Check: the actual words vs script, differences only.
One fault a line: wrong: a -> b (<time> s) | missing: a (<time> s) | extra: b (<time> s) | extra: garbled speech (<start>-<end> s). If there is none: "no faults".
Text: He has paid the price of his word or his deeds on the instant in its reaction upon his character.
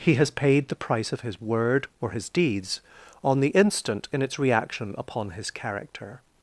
no faults